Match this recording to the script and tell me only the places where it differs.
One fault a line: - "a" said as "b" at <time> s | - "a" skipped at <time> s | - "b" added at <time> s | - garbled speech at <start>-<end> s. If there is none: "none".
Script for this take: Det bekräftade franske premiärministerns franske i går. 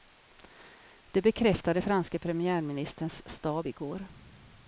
- "franske" said as "stab" at 3.3 s